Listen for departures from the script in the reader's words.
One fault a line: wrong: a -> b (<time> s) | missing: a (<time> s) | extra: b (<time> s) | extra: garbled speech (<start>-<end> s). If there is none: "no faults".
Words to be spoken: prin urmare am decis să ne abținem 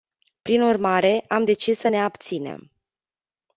no faults